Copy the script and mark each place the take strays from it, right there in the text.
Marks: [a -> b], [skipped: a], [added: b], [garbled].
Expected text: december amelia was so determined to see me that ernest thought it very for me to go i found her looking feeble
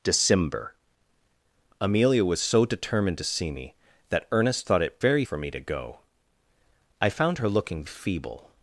december amelia was so determined to see me that ernest thought it very for me to go i found her looking feeble